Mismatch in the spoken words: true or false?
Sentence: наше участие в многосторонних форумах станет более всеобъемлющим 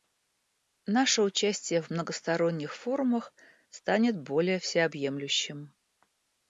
false